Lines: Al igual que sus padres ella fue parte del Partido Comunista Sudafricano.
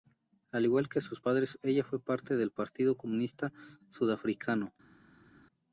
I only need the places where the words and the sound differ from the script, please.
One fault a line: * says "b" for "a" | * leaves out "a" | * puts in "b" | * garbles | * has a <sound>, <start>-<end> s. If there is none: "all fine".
all fine